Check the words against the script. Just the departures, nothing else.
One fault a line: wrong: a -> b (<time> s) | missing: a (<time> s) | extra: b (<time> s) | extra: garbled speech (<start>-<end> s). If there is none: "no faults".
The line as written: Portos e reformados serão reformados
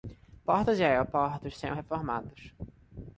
wrong: reformados -> aeroportos (0.8 s)